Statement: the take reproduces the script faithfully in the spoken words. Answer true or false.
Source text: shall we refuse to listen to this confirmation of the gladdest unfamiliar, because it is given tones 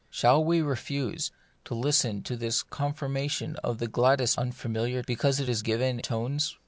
true